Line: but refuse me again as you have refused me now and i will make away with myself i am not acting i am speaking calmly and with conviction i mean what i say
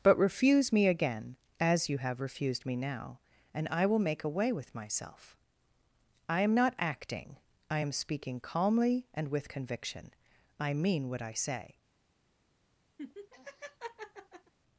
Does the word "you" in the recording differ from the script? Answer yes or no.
no